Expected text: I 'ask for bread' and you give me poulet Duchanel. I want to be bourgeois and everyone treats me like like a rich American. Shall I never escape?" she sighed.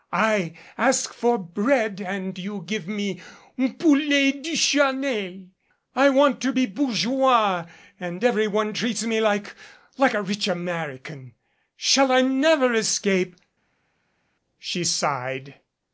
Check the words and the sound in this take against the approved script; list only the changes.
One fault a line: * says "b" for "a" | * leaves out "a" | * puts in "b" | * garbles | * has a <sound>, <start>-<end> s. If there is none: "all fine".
all fine